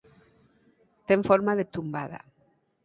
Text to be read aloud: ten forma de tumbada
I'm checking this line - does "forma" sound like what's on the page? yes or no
yes